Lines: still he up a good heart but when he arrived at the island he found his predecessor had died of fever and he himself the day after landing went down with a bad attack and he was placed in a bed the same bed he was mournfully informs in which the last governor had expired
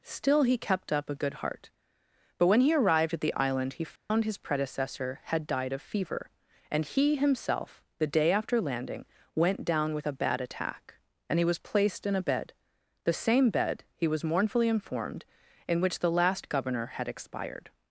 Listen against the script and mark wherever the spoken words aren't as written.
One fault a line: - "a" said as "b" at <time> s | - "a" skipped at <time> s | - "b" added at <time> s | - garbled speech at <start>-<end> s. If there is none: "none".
- "kept" added at 0.6 s
- "informs" said as "informed" at 14.7 s